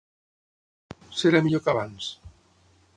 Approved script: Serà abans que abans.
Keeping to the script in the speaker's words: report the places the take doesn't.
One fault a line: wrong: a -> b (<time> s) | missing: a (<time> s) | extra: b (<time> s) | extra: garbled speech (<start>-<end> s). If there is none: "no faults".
wrong: abans -> millor (1.5 s)